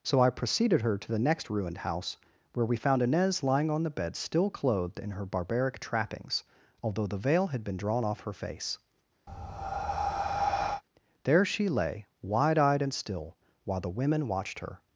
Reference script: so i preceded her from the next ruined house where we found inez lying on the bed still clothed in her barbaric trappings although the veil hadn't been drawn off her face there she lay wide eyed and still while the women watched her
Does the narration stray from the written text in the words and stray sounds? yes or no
yes